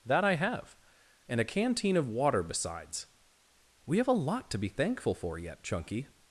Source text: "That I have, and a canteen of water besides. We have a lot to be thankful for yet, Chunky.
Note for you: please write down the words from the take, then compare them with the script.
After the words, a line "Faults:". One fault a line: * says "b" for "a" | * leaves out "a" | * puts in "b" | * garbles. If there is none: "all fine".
"That I have, and a canteen of water besides. We have a lot to be thankful for yet, Chunky.
Faults:
all fine